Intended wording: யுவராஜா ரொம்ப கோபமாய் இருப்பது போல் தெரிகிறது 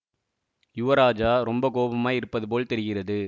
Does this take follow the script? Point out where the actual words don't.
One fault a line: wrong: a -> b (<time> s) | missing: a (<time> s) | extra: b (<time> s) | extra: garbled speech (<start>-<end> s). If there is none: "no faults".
no faults